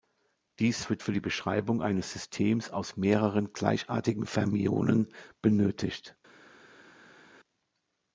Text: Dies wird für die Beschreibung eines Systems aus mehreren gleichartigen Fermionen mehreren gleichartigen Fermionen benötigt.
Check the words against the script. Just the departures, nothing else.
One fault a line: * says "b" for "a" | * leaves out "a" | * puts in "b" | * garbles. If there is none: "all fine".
* leaves out "mehreren gleichartigen Fermionen"